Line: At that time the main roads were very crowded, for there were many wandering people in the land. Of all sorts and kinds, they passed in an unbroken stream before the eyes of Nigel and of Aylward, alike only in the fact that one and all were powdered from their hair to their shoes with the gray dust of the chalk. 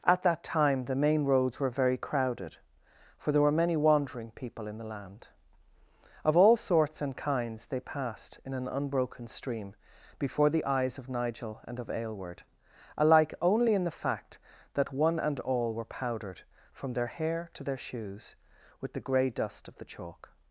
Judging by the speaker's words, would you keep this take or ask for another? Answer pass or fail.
pass